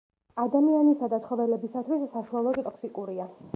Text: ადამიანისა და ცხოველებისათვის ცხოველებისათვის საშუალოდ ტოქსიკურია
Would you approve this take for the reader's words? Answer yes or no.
no